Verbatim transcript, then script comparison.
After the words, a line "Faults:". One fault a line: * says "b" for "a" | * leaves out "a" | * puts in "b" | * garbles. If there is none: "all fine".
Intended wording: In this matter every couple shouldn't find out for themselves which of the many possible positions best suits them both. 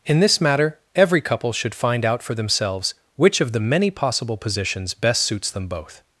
In this matter every couple should find out for themselves which of the many possible positions best suits them both.
Faults:
* says "should" for "shouldn't"